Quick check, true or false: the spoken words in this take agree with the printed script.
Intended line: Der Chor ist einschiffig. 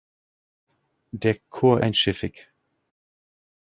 false